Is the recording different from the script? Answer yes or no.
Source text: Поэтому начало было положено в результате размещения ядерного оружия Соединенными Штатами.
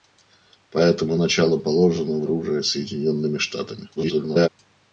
yes